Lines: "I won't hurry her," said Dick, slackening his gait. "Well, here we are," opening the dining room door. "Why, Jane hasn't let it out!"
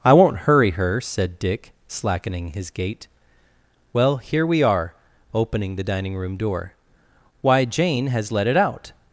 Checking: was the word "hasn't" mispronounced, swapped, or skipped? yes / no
yes